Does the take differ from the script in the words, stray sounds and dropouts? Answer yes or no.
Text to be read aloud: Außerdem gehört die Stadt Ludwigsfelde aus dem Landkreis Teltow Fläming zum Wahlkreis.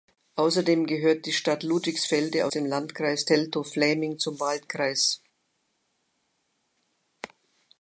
yes